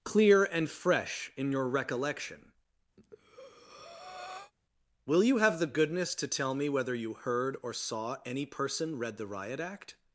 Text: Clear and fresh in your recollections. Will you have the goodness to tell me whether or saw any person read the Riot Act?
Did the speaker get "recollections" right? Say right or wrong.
wrong